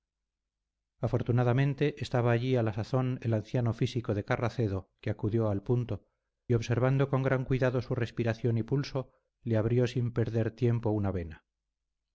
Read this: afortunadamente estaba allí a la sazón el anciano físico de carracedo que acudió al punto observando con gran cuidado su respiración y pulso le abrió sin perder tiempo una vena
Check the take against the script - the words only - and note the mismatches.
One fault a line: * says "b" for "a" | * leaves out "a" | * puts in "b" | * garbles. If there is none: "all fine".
all fine